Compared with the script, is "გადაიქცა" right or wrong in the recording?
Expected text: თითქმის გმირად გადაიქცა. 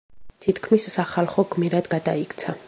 right